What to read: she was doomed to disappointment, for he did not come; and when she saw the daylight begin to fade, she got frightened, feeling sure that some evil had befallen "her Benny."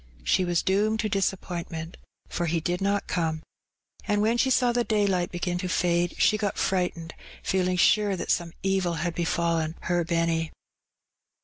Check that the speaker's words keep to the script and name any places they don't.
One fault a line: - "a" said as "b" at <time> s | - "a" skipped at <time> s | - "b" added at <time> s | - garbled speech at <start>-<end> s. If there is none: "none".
none